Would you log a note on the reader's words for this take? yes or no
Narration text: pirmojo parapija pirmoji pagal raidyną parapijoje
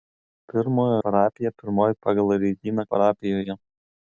no